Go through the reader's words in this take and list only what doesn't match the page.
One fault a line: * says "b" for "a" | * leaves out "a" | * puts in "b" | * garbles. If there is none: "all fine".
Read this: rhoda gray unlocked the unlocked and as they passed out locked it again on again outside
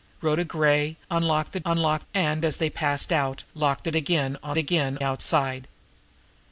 all fine